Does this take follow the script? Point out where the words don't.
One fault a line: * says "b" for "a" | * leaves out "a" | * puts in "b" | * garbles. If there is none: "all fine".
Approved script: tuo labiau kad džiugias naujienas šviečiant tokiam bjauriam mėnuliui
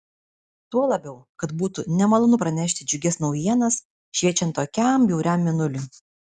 * puts in "būtų nemalonu pranešti"